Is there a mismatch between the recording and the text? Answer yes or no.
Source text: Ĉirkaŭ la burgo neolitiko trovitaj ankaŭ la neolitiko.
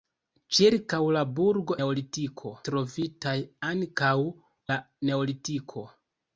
no